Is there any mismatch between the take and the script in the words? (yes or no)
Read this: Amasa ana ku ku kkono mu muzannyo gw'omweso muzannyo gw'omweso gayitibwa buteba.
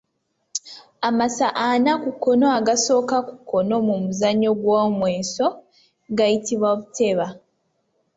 yes